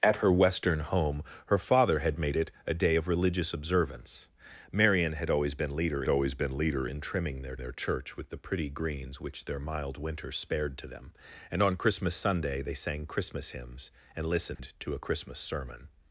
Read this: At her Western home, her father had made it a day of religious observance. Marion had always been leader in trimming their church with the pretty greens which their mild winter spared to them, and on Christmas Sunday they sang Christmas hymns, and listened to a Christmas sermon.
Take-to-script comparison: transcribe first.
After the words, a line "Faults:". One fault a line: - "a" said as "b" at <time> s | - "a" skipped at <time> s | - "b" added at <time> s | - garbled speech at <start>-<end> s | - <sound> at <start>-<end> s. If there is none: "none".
At her Western home, her father had made it a day of religious observance. Marion had always been leader always been leader in trimming their their church with the pretty greens which their mild winter spared to them, and on Christmas Sunday they sang Christmas hymns, and listened to a Christmas sermon.
Faults:
- "always been leader" added at 6.1 s
- "their" added at 7.6 s
- dropout at 14.5-14.6 s